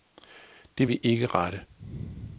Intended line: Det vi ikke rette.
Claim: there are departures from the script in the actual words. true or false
false